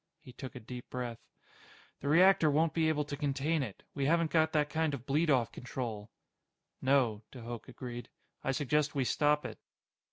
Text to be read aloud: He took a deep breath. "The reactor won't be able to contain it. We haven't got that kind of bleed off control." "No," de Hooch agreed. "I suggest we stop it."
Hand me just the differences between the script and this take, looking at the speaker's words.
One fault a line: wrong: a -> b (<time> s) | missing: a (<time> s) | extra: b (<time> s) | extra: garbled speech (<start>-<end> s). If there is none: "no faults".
no faults